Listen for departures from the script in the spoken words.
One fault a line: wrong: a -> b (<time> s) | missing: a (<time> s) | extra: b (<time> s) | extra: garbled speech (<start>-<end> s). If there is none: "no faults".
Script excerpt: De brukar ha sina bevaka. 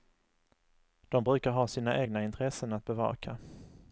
extra: egna intressen att (2.0 s)